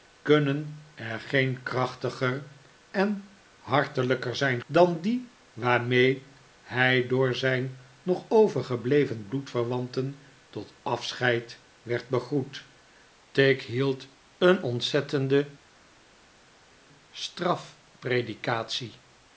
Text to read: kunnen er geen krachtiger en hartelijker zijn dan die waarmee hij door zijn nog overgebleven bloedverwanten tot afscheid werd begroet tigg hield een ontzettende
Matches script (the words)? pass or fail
pass